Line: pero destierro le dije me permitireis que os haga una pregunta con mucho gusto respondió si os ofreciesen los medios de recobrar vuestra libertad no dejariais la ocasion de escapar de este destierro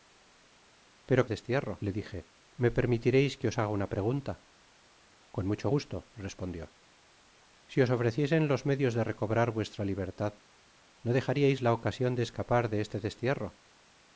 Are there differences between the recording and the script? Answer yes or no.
no